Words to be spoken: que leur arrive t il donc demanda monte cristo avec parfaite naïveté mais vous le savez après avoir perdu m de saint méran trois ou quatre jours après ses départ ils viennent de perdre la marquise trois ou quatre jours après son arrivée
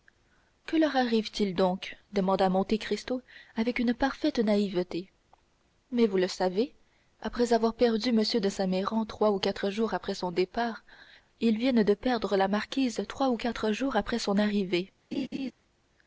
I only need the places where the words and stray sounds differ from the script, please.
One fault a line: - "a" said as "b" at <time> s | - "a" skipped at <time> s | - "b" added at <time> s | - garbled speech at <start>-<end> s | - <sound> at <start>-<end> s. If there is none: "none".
- "une" added at 3.8 s
- "ses" said as "son" at 10.2 s
- laugh at 15.1-15.5 s